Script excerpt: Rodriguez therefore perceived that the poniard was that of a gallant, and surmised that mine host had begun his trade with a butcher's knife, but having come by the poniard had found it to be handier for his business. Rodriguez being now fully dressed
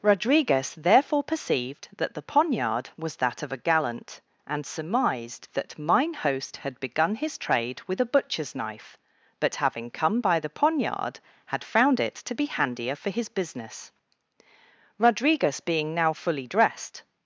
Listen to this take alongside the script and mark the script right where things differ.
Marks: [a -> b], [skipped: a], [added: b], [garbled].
Rodriguez therefore perceived that the poniard was that of a gallant, and surmised that mine host had begun his trade with a butcher's knife, but having come by the poniard had found it to be handier for his business. Rodriguez being now fully dressed